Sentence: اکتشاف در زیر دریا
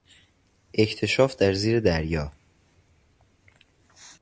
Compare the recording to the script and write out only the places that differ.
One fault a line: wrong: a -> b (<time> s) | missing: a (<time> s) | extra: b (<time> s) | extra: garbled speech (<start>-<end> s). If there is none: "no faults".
no faults